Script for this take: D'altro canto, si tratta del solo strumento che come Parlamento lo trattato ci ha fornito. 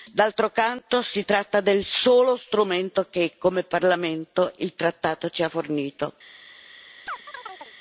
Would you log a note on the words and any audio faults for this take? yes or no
yes